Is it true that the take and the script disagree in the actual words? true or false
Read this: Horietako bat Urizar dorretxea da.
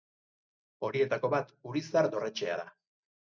false